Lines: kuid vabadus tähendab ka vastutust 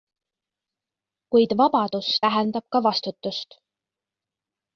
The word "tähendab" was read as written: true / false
true